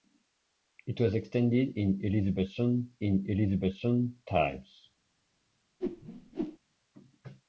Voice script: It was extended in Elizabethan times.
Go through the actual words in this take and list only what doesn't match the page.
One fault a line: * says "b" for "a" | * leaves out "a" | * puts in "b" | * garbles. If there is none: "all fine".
* puts in "in Elizabethan"